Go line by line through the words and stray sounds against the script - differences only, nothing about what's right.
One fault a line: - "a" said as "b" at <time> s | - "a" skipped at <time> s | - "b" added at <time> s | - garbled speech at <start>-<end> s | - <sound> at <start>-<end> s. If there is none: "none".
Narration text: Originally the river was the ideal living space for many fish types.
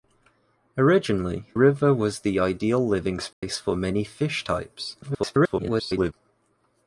- "the" skipped at 1.4 s
- dropout at 3.3-3.4 s
- garbled speech at 5.0-6.1 s